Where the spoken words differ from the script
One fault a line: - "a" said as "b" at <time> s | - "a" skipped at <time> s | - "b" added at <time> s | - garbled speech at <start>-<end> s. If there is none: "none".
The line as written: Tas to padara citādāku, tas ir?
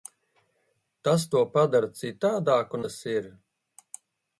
none